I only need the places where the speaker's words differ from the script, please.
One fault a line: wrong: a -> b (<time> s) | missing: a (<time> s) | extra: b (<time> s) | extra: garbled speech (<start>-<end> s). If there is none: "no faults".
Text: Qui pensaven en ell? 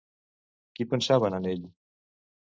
no faults